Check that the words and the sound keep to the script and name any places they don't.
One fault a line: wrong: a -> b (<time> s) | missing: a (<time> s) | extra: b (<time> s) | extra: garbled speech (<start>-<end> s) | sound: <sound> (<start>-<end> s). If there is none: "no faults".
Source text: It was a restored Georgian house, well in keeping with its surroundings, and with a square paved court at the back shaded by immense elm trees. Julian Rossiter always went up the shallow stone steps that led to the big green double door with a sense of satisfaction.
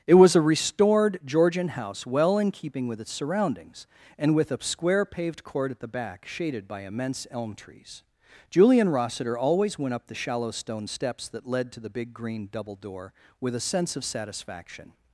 no faults